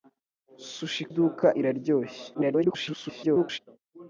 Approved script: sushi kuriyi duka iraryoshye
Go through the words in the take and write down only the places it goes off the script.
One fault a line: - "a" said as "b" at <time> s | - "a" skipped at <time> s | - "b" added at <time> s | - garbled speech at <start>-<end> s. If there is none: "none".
- "kuriyi" skipped at 1.0 s
- garbled speech at 2.3-3.6 s